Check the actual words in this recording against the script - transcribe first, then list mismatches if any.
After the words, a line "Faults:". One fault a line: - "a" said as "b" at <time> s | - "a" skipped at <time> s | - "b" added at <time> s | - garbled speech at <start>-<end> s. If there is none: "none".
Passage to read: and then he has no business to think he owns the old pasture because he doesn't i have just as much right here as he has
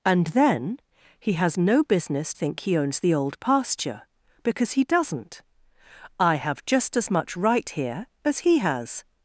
and then he has no business think he owns the old pasture because he doesn't i have just as much right here as he has
Faults:
- "to" skipped at 2.3 s